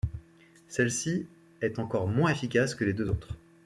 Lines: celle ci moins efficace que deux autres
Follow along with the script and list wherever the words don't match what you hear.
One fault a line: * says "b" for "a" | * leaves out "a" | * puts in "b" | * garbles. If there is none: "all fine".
* puts in "est encore"
* puts in "les"